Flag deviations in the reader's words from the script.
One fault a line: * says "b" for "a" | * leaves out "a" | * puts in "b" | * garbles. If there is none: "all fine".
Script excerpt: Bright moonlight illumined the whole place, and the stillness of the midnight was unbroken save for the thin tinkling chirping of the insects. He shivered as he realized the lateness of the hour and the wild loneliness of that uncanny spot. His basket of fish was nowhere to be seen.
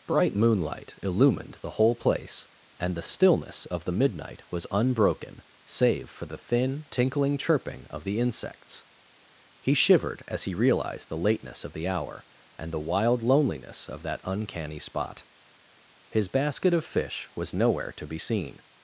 all fine